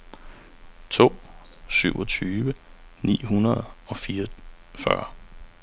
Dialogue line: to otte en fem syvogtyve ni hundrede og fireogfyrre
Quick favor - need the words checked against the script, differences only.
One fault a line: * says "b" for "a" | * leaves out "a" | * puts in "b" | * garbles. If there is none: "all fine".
* leaves out "otte en fem"